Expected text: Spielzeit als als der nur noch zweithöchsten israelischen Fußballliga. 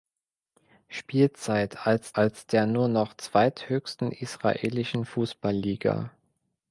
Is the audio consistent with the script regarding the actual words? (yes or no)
yes